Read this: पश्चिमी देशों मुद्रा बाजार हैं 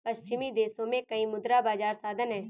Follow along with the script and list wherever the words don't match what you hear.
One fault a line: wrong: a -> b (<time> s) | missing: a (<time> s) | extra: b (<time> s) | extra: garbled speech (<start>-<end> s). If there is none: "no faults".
extra: में कई (0.9 s)
extra: साधन (1.9 s)